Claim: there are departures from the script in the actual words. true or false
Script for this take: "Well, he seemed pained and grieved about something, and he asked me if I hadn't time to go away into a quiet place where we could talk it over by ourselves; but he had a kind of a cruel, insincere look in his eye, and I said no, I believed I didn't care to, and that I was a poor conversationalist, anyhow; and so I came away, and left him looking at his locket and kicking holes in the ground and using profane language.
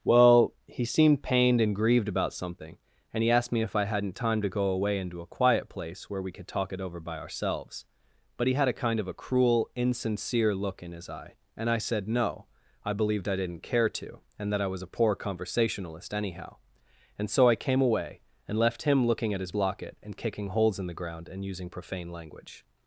false